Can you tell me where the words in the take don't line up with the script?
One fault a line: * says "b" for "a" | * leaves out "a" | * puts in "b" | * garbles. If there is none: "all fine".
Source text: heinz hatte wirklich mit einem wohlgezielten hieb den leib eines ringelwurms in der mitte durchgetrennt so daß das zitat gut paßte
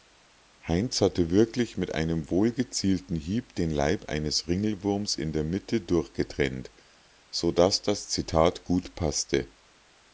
all fine